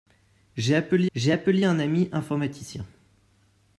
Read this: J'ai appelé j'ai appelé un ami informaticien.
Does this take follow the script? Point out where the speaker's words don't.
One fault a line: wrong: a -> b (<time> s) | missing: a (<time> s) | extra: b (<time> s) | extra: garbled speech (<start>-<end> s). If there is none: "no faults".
no faults